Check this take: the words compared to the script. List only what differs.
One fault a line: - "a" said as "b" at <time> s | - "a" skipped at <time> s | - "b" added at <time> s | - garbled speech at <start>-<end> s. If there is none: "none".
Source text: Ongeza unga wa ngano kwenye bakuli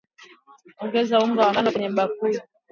none